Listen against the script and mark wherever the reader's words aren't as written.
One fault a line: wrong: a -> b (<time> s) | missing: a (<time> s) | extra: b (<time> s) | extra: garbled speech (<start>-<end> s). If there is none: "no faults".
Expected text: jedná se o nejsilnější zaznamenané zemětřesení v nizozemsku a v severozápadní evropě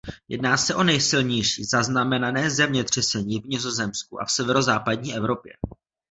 no faults